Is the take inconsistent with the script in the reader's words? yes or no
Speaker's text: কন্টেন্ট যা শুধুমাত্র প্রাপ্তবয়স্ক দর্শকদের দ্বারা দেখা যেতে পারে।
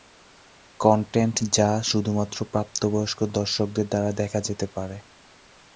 no